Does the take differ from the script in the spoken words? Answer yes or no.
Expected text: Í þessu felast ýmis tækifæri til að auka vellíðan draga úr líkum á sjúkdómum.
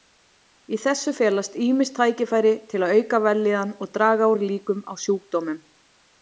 yes